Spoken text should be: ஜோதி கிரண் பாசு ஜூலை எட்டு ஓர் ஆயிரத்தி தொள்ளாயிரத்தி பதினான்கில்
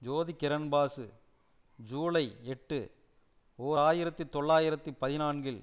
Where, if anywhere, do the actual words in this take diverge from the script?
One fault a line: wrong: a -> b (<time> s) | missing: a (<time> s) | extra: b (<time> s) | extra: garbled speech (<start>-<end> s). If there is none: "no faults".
no faults